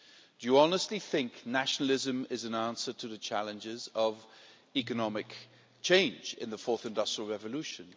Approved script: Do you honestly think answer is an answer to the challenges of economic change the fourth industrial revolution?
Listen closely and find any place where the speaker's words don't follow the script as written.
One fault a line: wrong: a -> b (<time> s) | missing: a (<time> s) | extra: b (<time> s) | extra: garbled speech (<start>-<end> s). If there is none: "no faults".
wrong: answer -> nationalism (1.4 s)
extra: in (6.4 s)